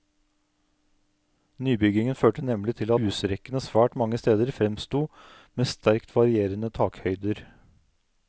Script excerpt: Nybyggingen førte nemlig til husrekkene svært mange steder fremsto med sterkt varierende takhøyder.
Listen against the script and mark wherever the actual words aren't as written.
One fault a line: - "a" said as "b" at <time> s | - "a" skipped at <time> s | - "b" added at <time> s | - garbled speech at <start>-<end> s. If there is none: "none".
none